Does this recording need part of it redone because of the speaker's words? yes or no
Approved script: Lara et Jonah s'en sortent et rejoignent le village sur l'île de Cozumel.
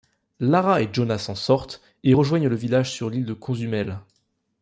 no